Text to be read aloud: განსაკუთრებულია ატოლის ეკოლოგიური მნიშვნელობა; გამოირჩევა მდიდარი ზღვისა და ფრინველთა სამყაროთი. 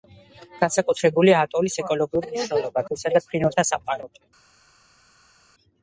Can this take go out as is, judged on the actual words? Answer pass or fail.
fail